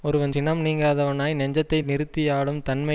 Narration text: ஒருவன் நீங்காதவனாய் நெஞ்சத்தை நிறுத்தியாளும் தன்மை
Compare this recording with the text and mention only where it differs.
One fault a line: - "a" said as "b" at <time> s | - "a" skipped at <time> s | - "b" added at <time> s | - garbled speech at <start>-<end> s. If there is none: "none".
- "சினம்" added at 0.3 s